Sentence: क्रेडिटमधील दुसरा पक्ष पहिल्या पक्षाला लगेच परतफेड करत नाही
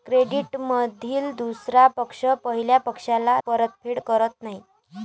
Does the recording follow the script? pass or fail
fail